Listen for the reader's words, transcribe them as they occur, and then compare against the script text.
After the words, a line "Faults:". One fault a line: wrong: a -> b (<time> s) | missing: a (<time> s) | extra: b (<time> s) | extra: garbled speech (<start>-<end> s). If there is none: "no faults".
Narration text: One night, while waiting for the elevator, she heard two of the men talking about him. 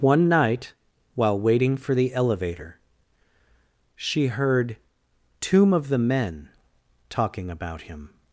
One night, while waiting for the elevator, she heard tomb of the men talking about him.
Faults:
wrong: two -> tomb (5.4 s)